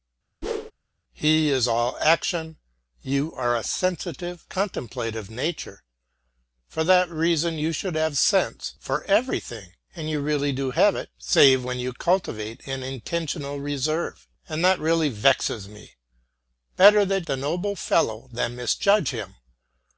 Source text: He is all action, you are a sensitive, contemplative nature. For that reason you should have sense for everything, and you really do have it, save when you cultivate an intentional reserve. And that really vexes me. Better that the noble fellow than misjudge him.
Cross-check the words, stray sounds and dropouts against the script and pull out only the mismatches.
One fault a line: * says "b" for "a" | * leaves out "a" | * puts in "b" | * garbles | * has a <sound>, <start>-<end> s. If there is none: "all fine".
* has a whoosh, 0.4-0.7 s